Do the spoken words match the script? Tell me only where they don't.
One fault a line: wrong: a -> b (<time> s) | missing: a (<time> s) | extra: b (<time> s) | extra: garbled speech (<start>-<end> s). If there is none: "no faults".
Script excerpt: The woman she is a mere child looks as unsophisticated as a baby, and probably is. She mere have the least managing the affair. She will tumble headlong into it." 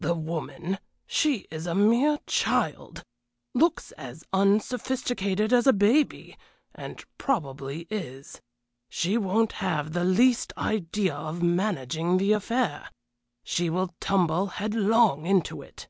wrong: mere -> won't (9.2 s)
extra: idea of (10.6 s)